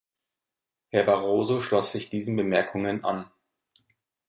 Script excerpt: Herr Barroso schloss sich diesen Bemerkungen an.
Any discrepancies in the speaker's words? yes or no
no